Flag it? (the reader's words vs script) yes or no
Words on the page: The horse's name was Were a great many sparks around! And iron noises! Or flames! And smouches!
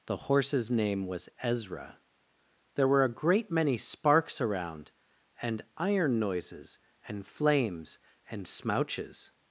yes